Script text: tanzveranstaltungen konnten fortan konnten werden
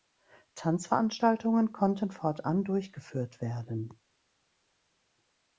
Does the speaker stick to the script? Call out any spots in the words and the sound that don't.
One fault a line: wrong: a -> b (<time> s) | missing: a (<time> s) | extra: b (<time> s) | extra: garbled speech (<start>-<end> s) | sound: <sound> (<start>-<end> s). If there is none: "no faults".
wrong: konnten -> durchgeführt (2.6 s)